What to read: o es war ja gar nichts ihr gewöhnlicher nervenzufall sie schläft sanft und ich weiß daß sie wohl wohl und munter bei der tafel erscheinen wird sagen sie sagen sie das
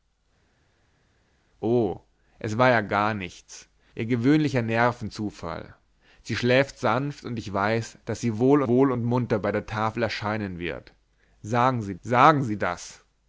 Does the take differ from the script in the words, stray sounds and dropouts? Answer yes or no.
no